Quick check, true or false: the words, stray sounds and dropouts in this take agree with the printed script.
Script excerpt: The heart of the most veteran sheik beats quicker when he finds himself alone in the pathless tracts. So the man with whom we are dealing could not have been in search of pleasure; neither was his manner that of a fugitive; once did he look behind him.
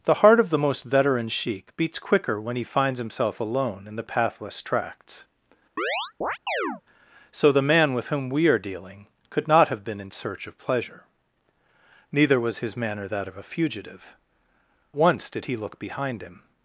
false